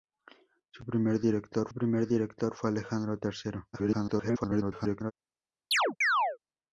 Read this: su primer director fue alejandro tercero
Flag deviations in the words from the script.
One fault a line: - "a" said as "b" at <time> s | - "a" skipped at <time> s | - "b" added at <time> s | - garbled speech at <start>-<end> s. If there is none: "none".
- "primer director" added at 1.7 s
- garbled speech at 3.7-5.1 s